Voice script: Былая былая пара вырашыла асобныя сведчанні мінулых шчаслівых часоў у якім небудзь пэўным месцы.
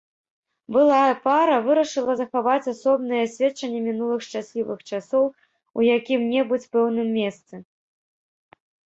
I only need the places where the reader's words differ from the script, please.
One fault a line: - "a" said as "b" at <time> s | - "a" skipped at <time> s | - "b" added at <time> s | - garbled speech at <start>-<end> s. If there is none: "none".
- "былая" skipped at 1.1 s
- "захаваць" added at 2.2 s